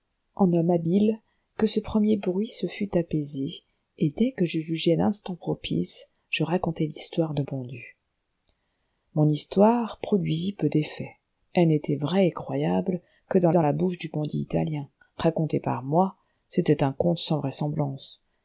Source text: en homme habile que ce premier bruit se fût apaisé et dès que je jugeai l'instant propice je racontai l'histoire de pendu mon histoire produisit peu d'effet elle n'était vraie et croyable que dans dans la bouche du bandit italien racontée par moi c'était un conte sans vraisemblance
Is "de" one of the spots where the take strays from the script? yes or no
no